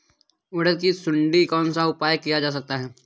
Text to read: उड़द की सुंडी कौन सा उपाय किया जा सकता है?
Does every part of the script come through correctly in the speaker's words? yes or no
yes